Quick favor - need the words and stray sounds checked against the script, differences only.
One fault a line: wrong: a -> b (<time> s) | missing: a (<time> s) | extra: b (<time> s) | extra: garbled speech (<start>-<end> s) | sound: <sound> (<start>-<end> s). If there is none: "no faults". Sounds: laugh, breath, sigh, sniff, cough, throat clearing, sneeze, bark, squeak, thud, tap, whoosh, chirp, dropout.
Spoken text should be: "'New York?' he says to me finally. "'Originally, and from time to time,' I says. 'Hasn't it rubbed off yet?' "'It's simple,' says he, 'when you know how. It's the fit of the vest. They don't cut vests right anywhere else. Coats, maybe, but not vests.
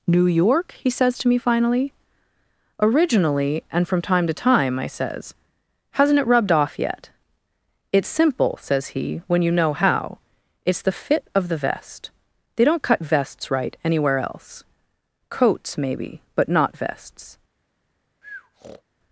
sound: breath (18.2-18.8 s)